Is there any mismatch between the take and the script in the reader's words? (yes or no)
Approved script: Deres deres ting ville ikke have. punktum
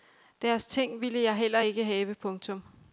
yes